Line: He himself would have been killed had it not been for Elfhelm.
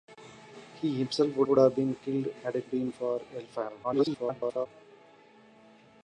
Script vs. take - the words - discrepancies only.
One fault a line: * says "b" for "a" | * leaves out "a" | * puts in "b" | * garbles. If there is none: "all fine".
* puts in "would"
* leaves out "not"
* garbles